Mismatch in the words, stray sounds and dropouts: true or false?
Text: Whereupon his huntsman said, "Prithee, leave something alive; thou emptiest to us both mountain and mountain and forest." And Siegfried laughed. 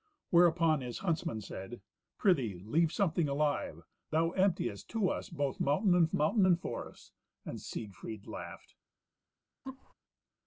true